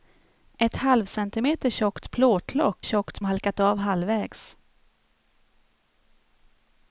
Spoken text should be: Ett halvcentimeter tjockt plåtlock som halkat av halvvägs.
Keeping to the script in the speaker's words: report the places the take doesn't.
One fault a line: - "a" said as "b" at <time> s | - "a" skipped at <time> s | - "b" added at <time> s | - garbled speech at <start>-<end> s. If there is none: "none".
- "som" said as "tjockt" at 2.8 s